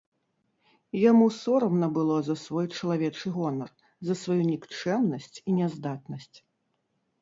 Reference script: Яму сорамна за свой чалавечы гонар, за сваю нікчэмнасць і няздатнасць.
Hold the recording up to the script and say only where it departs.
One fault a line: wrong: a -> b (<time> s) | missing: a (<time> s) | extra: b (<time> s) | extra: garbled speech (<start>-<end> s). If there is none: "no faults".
extra: было (2.0 s)